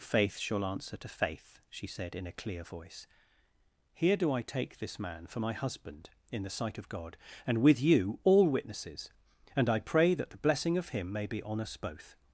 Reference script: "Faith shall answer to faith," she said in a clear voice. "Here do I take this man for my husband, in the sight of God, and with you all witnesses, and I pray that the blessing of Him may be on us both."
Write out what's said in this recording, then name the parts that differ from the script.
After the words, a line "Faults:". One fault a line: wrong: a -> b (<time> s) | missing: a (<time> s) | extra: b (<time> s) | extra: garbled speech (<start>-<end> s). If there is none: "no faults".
"Faith shall answer to faith," she said in a clear voice. "Here do I take this man for my husband, in the sight of God, and with you all witnesses, and I pray that the blessing of Him may be on us both."
Faults:
no faults